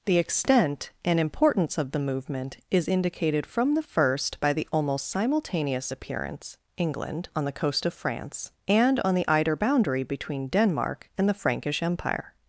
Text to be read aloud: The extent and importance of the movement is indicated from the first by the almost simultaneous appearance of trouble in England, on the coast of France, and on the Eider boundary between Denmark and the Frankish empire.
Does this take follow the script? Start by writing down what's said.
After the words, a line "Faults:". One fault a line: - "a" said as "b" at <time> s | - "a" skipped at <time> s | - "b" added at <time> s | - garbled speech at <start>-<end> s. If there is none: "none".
The extent and importance of the movement is indicated from the first by the almost simultaneous appearance England, on the coast of France, and on the Eider boundary between Denmark and the Frankish empire.
Faults:
- "of trouble in" skipped at 6.6 s